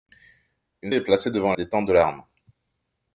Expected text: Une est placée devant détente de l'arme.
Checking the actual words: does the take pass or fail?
pass